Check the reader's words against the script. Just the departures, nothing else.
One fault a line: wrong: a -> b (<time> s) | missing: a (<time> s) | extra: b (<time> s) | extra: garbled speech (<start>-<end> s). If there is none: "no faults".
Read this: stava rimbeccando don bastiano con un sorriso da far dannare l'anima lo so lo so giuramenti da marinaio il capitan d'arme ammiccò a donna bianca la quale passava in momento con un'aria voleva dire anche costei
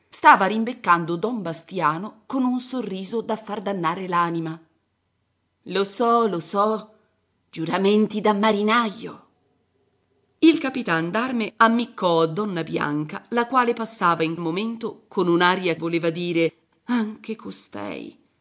no faults